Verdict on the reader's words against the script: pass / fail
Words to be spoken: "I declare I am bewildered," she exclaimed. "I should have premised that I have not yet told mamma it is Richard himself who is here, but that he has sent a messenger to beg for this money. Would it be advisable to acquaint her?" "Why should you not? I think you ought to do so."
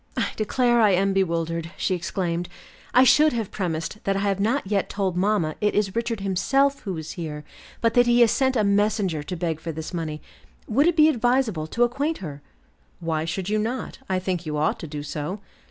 pass